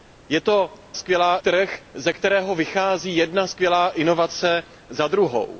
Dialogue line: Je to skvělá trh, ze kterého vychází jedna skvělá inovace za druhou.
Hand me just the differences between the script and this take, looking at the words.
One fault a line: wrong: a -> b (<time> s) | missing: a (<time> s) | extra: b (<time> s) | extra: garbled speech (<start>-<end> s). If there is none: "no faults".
no faults